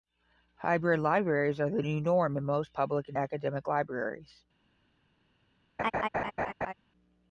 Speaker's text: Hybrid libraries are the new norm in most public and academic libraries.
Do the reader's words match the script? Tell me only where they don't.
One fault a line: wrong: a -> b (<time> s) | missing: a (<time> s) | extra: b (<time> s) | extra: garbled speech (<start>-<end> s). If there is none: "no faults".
no faults